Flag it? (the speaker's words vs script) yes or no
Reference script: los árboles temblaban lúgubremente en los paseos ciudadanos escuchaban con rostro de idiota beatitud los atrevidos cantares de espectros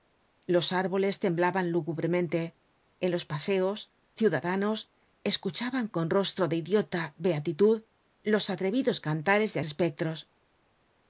no